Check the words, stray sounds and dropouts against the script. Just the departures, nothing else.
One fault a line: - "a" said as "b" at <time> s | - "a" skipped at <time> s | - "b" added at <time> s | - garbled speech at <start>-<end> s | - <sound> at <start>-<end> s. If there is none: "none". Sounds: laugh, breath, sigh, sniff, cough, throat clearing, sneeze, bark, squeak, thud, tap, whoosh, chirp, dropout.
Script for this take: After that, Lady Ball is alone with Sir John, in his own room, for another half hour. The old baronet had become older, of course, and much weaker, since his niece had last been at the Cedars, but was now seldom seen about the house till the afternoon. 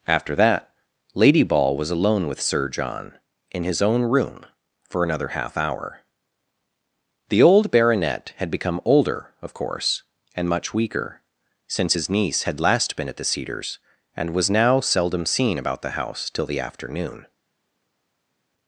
- "is" said as "was" at 1.8 s
- "but" said as "and" at 14.1 s